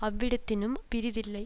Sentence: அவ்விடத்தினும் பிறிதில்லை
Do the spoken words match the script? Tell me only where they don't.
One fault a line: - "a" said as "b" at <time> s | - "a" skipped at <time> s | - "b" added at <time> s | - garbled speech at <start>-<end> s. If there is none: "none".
none